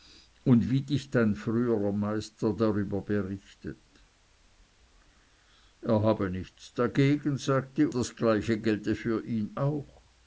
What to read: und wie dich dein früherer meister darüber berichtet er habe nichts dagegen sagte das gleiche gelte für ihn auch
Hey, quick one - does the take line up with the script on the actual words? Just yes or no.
yes